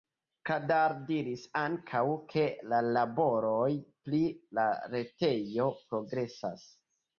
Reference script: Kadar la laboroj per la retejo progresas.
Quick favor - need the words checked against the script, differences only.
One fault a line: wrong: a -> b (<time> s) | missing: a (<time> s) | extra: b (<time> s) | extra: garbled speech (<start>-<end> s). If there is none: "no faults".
extra: diris ankaŭ ke (1.1 s)
wrong: per -> pri (4.1 s)